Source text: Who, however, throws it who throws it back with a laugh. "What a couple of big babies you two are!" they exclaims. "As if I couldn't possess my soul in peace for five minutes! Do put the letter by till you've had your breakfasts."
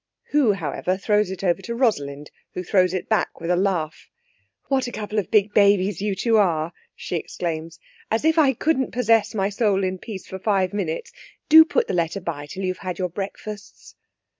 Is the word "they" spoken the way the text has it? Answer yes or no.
no